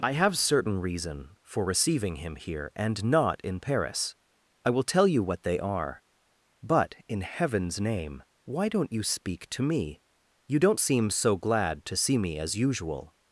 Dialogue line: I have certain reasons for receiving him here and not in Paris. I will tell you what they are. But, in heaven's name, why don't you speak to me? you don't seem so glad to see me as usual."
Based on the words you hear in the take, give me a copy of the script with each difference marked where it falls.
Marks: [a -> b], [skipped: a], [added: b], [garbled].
I have certain [reasons -> reason] for receiving him here and not in Paris. I will tell you what they are. But, in heaven's name, why don't you speak to me? you don't seem so glad to see me as usual."